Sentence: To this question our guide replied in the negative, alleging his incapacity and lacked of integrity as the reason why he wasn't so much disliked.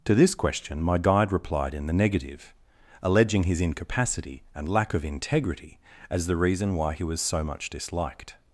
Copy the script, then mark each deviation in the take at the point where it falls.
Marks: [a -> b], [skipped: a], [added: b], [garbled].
To this question [our -> my] guide replied in the negative, alleging his incapacity and [lacked -> lack] of integrity as the reason why he [wasn't -> was] so much disliked.